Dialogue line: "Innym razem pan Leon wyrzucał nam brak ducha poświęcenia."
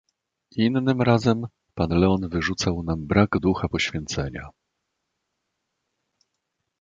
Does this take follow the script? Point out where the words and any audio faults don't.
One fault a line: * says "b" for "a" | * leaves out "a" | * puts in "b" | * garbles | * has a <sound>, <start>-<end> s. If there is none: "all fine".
all fine